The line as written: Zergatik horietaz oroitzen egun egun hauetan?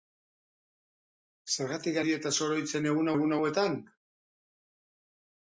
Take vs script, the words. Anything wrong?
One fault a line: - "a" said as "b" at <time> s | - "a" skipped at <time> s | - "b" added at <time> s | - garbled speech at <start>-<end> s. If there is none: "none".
none